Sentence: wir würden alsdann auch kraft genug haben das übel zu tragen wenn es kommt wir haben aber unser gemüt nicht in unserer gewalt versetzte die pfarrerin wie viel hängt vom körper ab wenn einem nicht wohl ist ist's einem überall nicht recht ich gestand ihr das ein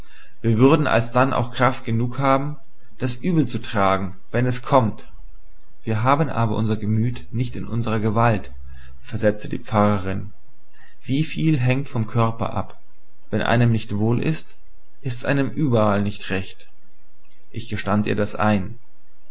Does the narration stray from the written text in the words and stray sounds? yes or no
no